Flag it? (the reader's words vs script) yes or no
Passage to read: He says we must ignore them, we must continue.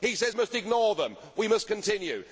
yes